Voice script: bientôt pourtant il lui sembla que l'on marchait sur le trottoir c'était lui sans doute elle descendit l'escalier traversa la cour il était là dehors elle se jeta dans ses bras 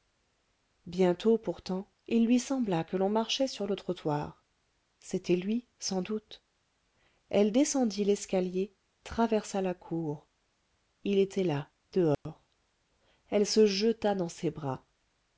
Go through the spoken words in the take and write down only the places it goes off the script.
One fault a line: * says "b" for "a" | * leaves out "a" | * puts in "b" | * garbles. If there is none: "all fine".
all fine